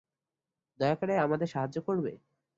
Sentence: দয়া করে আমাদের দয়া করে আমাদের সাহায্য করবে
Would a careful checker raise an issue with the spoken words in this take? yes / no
yes